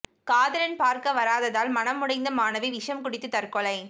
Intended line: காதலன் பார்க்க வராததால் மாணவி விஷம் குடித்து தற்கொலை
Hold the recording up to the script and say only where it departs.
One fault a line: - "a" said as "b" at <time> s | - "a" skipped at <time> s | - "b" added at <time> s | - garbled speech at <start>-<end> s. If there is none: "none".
- "மனம் உடைந்த" added at 1.7 s